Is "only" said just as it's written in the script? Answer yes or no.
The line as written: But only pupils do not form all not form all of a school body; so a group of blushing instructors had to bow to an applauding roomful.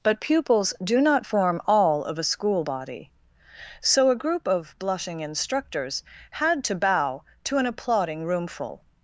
no